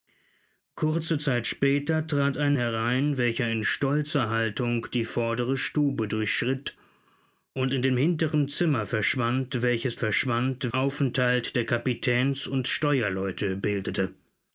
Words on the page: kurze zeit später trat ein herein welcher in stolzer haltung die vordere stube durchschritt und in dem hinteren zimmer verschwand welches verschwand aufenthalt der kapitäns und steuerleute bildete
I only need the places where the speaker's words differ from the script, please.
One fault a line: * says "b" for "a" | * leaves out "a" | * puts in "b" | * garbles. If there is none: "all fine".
all fine